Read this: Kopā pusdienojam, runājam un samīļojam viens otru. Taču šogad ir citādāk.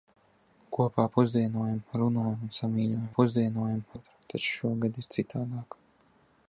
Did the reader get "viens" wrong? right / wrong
wrong